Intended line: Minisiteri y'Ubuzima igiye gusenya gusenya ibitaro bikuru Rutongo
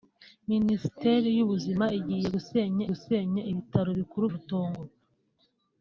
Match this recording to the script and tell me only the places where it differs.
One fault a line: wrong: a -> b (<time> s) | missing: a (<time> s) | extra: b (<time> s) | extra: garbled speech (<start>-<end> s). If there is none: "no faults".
no faults